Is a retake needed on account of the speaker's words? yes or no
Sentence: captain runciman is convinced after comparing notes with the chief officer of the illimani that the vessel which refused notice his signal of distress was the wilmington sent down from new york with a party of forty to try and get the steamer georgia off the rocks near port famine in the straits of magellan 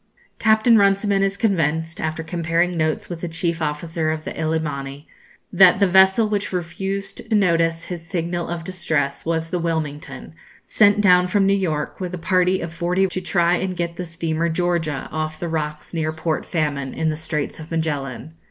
no